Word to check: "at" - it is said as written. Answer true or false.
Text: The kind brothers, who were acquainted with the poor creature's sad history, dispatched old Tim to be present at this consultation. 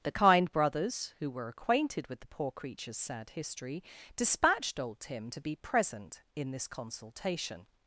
false